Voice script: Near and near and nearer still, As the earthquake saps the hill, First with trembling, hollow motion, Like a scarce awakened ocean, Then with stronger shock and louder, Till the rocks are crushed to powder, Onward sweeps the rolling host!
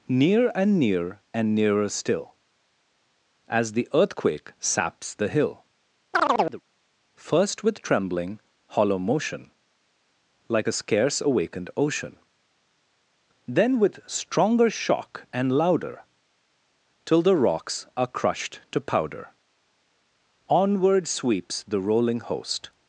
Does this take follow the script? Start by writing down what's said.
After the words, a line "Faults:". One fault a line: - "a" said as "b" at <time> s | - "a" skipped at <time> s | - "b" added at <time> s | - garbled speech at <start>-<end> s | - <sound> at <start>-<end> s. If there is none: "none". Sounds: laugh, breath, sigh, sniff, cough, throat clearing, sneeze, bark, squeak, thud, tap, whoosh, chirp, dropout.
Near and near and nearer still, As the earthquake saps the hill, First with trembling, hollow motion, Like a scarce awakened ocean, Then with stronger shock and louder, Till the rocks are crushed to powder, Onward sweeps the rolling host!
Faults:
- chirp at 6.1-6.6 s